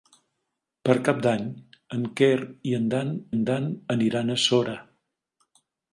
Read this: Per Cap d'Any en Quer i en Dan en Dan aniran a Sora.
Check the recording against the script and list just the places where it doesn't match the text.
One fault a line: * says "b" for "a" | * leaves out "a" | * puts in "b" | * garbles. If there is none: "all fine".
all fine